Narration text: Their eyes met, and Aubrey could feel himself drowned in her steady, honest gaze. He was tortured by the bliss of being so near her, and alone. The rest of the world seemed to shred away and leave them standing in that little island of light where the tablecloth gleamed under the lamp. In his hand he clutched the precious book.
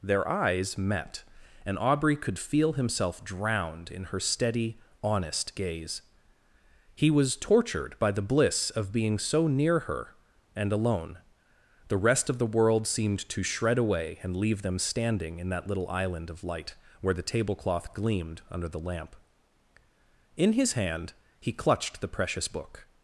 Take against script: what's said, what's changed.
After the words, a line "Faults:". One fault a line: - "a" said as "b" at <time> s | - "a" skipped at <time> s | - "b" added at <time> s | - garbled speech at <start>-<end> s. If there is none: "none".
Their eyes met, and Aubrey could feel himself drowned in her steady, honest gaze. He was tortured by the bliss of being so near her, and alone. The rest of the world seemed to shred away and leave them standing in that little island of light where the tablecloth gleamed under the lamp. In his hand he clutched the precious book.
Faults:
none